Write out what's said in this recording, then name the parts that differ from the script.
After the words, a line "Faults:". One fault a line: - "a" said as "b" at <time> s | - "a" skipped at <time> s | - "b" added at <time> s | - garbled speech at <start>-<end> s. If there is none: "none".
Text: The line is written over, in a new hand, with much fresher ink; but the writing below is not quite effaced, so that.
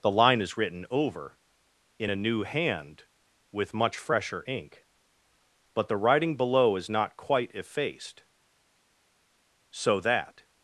The line is written over, in a new hand, with much fresher ink; but the writing below is not quite effaced, so that.
Faults:
none